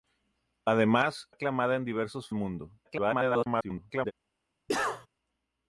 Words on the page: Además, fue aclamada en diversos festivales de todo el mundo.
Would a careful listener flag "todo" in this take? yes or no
yes